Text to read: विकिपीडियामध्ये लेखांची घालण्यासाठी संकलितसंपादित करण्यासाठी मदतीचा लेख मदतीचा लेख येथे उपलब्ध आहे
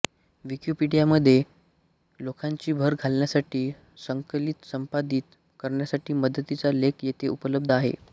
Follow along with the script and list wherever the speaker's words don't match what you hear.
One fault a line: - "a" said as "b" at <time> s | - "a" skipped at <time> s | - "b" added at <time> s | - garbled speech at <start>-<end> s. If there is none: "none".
- "भर" added at 2.7 s
- "मदतीचा लेख" skipped at 7.0 s